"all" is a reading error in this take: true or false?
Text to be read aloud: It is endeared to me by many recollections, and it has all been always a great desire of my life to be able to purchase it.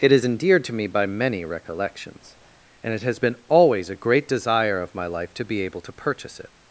true